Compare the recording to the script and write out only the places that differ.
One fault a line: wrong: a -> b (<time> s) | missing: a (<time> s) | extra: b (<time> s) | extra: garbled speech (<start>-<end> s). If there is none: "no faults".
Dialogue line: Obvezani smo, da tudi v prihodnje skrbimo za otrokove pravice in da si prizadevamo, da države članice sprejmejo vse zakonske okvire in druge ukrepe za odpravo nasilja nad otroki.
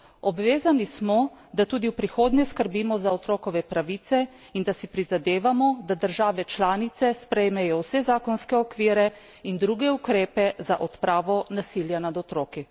no faults